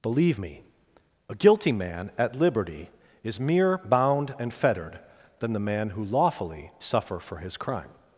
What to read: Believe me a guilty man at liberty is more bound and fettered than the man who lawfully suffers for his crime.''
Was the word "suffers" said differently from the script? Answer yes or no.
yes